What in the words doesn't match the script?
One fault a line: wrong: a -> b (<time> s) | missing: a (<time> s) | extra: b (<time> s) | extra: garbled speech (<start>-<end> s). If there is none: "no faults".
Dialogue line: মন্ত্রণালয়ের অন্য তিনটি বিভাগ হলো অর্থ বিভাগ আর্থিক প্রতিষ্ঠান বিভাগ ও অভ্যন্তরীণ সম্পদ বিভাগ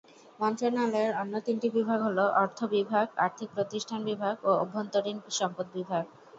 no faults